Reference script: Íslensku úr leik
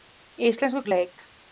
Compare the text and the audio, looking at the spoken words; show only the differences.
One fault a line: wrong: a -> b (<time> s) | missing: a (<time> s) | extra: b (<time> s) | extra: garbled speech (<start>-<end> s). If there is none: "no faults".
no faults